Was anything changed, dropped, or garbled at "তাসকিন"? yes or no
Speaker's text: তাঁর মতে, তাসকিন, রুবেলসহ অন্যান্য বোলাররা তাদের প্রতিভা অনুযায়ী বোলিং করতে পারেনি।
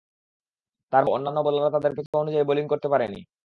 yes